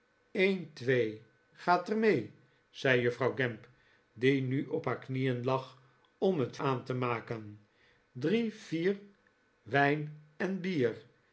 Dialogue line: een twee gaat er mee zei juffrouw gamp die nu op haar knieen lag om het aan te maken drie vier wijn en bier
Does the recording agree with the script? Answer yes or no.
yes